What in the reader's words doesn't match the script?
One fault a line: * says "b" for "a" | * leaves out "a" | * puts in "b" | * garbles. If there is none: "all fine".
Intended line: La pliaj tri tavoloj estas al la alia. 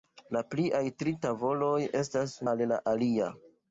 all fine